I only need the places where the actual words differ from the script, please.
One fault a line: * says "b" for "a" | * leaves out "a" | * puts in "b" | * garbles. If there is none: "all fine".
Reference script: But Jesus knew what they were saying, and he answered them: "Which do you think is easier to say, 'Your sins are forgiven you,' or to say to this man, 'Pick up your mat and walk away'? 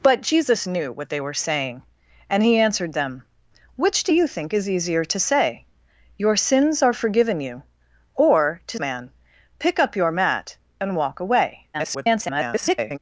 * leaves out "say to this"
* garbles